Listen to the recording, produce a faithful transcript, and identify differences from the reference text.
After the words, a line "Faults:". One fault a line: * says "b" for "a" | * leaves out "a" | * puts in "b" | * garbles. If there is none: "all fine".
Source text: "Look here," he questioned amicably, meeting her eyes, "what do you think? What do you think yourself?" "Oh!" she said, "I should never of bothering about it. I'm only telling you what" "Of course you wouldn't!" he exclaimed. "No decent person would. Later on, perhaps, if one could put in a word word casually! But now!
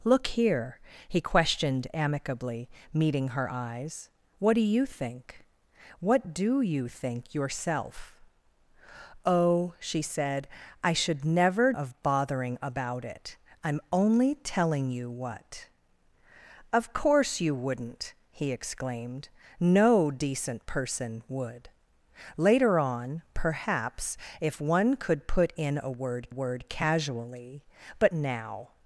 "Look here," he questioned amicably, meeting her eyes, "what do you think? What do you think yourself?" "Oh!" she said, "I should never of bothering about it. I'm only telling you what" "Of course you wouldn't!" he exclaimed. "No decent person would. Later on, perhaps, if one could put in a word word casually! But now!
Faults:
all fine